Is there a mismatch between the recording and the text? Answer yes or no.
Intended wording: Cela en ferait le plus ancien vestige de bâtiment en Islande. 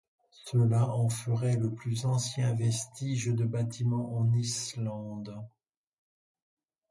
no